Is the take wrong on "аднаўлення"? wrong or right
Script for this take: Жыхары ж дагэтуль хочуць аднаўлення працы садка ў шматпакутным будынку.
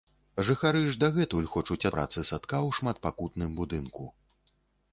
wrong